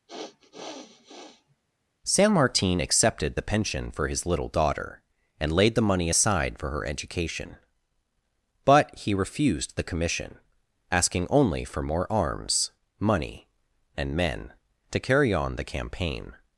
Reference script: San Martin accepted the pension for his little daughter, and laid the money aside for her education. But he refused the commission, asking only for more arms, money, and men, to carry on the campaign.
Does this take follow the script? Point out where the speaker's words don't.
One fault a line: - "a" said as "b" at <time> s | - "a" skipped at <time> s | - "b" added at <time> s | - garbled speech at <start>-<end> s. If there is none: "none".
none